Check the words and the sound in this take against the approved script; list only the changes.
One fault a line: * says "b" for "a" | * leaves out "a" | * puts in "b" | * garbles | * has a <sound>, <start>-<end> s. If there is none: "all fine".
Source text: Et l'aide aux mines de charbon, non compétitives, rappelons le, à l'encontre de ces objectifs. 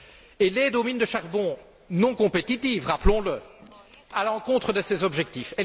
all fine